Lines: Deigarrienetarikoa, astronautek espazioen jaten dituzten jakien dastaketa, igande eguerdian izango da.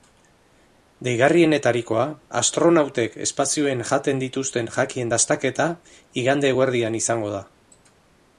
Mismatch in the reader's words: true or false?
false